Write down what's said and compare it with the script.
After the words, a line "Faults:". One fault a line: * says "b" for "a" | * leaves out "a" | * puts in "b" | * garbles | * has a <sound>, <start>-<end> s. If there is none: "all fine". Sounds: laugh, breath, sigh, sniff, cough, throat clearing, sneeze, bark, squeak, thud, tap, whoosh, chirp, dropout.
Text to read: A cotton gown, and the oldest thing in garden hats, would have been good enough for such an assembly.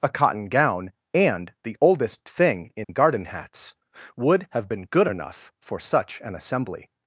A cotton gown, and the oldest thing in garden hats, would have been good enough for such an assembly.
Faults:
* has a dropout, 2.8-2.9 s